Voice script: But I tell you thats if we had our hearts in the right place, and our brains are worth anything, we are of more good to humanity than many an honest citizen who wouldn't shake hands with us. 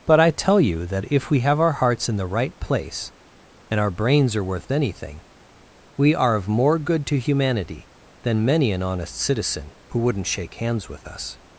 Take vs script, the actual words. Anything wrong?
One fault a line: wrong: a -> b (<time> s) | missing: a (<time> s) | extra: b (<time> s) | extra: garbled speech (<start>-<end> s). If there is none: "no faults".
wrong: thats -> that (0.9 s)
wrong: had -> have (1.4 s)